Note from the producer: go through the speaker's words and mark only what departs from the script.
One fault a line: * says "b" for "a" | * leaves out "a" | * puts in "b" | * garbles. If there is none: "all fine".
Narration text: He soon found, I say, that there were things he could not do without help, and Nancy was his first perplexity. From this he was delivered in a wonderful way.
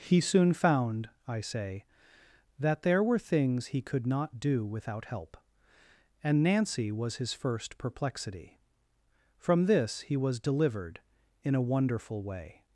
all fine